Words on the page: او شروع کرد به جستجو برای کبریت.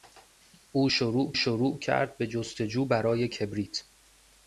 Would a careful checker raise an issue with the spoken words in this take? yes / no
yes